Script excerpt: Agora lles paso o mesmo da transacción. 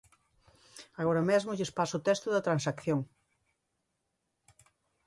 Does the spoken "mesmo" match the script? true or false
false